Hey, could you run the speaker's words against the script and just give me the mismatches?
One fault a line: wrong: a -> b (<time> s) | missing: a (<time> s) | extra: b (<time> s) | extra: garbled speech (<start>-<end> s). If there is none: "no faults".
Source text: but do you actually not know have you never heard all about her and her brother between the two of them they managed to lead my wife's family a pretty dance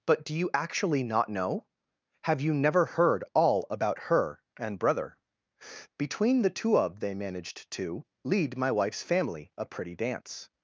missing: her (4.8 s)
missing: them (7.0 s)